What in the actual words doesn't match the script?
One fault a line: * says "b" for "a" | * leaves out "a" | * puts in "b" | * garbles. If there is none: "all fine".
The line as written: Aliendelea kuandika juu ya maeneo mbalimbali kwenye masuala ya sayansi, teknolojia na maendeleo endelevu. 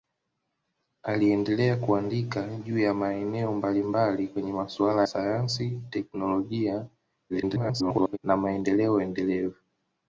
* leaves out "ya"
* garbles